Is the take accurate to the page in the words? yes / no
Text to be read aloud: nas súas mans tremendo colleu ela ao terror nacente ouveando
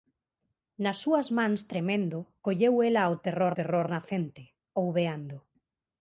no